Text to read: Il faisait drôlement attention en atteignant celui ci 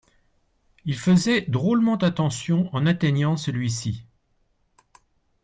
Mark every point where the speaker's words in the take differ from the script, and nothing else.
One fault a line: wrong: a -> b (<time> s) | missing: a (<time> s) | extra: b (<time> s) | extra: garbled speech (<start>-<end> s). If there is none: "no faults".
no faults